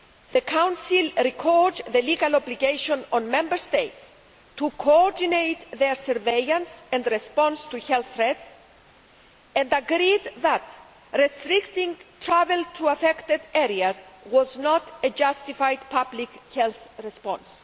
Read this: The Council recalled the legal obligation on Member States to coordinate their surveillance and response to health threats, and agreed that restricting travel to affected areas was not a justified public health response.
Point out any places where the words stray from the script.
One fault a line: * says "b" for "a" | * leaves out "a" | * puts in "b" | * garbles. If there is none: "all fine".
all fine